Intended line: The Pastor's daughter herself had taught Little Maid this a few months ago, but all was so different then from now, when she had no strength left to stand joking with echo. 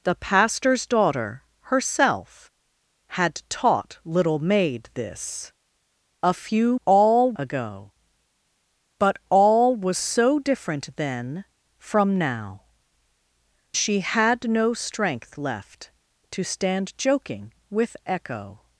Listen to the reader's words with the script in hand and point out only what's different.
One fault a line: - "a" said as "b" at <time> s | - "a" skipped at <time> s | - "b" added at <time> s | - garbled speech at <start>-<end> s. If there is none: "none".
- "months" said as "all" at 6.8 s
- "when" skipped at 12.6 s